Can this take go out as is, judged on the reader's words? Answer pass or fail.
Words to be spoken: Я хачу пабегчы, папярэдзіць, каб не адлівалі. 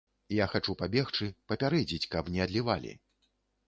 pass